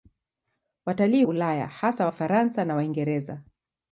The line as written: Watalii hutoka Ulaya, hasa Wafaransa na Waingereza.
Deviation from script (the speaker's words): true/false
true